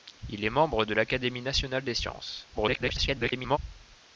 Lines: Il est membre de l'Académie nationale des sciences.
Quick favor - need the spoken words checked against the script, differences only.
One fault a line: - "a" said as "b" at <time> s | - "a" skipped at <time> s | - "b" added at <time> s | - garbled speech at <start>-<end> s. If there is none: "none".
- garbled speech at 2.5-3.6 s